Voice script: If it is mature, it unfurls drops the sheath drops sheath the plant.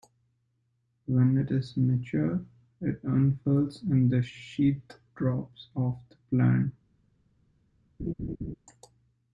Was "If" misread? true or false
true